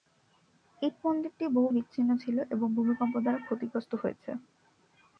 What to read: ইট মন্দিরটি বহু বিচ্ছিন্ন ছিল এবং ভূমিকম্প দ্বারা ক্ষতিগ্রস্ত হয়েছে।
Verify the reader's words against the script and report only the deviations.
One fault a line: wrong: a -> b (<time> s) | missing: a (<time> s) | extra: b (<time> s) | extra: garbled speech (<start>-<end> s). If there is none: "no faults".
no faults